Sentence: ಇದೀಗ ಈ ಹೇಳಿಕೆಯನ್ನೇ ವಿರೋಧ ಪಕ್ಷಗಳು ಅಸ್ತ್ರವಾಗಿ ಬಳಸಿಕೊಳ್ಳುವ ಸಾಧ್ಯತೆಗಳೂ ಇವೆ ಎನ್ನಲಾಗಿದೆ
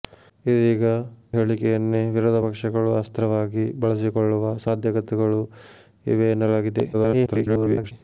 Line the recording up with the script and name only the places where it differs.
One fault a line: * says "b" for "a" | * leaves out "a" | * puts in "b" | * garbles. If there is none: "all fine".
* leaves out "ಈ"
* garbles